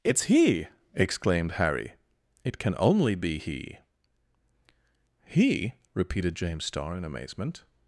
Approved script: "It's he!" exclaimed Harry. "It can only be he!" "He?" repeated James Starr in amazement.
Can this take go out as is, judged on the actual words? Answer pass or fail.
pass